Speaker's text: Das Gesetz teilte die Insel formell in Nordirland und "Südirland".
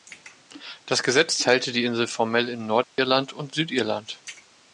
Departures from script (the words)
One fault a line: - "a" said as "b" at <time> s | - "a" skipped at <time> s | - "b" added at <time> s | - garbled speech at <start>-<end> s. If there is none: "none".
none